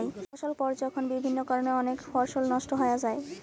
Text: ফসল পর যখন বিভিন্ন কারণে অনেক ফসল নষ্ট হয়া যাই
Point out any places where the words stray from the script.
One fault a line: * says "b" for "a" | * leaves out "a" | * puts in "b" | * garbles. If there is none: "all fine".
all fine